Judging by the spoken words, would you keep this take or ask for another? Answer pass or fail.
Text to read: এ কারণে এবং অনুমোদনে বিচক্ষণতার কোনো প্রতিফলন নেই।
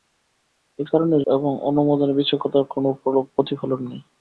pass